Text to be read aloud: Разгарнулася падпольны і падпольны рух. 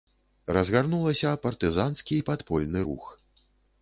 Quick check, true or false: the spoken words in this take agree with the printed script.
false